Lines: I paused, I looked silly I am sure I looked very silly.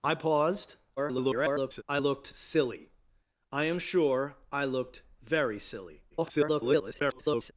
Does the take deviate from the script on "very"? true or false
false